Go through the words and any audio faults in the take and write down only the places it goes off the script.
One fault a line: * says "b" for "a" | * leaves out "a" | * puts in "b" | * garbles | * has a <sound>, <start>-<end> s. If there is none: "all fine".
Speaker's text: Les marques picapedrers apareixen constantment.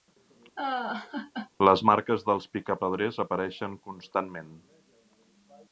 * has a laugh, 0.6-1.5 s
* puts in "dels"